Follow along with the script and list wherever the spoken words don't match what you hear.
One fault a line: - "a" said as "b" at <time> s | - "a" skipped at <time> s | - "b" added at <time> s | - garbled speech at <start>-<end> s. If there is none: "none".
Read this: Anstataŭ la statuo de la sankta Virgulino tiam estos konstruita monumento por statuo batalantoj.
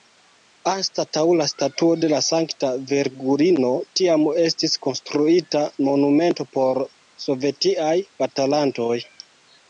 - "estos" said as "estis" at 4.4 s
- "statuo" said as "sovetiaj" at 7.3 s